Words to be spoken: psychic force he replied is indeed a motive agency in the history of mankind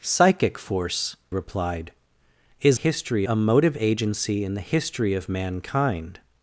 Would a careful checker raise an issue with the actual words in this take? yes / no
yes